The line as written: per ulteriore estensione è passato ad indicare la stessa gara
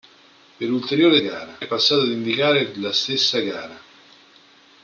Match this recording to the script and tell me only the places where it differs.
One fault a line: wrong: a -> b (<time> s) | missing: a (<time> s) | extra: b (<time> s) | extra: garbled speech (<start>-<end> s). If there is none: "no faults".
wrong: estensione -> gara (1.2 s)